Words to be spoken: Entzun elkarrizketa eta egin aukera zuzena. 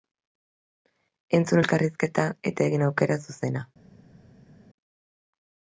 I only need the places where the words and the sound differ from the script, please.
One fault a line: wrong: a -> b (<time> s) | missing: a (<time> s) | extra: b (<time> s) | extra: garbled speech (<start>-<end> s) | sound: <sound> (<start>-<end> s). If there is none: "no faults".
no faults